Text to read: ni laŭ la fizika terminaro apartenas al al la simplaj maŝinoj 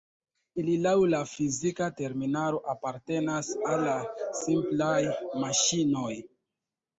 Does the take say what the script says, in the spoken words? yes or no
no